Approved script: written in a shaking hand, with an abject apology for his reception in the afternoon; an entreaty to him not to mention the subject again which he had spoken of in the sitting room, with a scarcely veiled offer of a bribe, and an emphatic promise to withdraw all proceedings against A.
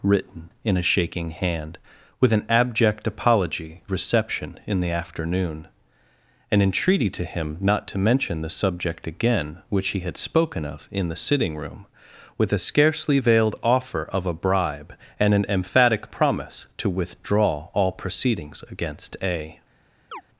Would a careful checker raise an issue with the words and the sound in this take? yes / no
yes